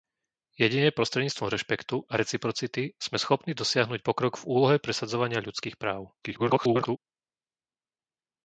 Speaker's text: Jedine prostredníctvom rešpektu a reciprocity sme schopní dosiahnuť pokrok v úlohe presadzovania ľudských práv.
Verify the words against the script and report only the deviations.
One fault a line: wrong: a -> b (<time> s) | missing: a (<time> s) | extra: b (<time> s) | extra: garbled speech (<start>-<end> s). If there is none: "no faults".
extra: garbled speech (6.2-7.0 s)